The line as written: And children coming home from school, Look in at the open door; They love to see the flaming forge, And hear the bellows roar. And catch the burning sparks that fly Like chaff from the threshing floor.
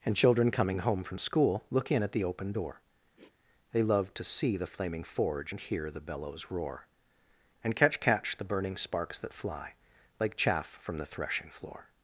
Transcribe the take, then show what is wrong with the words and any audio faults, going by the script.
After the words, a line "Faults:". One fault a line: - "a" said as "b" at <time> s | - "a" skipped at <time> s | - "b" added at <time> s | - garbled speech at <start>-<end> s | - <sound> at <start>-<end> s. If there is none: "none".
And children coming home from school, Look in at the open door; They love to see the flaming forge, And hear the bellows roar. And catch catch the burning sparks that fly Like chaff from the threshing floor.
Faults:
- sniff at 3.1-3.4 s
- "catch" added at 8.0 s